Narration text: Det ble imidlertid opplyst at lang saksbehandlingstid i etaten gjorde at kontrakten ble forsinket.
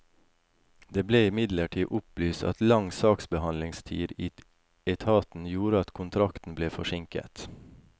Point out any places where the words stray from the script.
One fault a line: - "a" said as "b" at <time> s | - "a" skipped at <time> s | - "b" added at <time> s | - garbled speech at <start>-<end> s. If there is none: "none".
none